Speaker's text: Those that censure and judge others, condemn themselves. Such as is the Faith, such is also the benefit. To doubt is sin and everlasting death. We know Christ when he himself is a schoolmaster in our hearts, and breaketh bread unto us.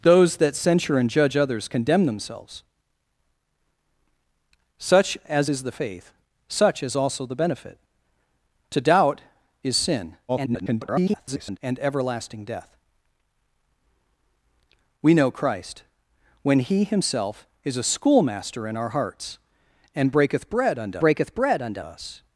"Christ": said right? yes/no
yes